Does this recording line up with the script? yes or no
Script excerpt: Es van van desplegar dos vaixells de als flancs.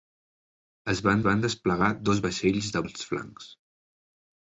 yes